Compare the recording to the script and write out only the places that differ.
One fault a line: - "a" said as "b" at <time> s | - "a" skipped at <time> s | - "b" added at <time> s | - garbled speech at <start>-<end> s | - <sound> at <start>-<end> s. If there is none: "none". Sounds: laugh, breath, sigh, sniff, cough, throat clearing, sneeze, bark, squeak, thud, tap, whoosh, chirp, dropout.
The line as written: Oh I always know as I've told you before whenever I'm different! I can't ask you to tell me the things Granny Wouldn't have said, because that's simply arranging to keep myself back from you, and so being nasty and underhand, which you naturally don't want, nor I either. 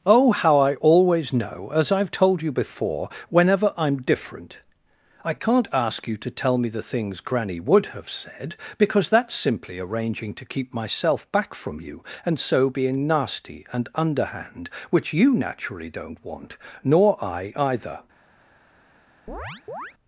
- "how" added at 0.3 s
- "Wouldn't" said as "WOULD" at 7.6 s
- chirp at 19.3-19.9 s